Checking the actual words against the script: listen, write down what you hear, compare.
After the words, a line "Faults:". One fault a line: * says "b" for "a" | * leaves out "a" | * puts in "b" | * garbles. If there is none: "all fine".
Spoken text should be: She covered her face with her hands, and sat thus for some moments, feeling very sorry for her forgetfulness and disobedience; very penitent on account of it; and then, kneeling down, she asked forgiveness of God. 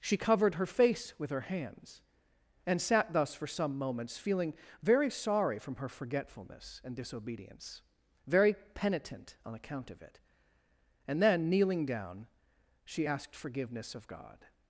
She covered her face with her hands, and sat thus for some moments, feeling very sorry from her forgetfulness and disobedience; very penitent on account of it; and then, kneeling down, she asked forgiveness of God.
Faults:
* says "from" for "for"